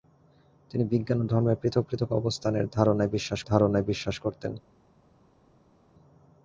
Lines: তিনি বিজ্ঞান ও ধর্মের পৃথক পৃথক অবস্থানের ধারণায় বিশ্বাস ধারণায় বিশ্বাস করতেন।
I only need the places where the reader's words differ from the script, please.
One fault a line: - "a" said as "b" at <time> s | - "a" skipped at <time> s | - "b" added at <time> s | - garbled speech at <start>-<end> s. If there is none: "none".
none